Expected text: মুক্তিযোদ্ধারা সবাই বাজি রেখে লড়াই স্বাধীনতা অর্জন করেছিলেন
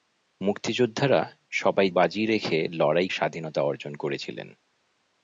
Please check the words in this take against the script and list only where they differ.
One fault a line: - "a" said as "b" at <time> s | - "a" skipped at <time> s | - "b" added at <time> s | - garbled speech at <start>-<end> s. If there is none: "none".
none